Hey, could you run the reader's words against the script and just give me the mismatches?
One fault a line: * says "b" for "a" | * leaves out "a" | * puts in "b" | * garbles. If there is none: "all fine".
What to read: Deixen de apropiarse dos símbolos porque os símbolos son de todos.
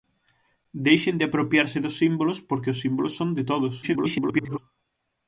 * garbles